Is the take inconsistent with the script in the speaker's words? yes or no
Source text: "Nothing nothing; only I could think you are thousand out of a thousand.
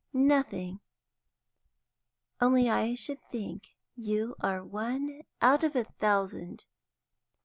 yes